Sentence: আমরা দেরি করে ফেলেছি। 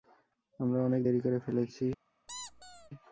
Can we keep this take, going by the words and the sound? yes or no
no